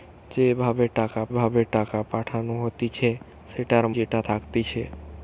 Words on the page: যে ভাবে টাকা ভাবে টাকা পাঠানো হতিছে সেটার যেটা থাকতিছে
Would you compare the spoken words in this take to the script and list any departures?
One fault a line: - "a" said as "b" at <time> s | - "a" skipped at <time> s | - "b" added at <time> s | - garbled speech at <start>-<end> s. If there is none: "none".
none